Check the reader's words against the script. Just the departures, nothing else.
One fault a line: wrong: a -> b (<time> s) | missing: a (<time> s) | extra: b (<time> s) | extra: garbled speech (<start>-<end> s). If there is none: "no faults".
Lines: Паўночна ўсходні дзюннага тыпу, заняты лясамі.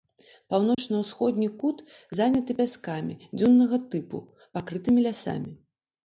extra: кут заняты пяскамі (1.6 s)
wrong: заняты -> пакрытымі (4.6 s)